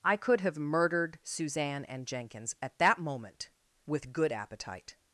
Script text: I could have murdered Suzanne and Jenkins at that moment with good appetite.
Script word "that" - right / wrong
right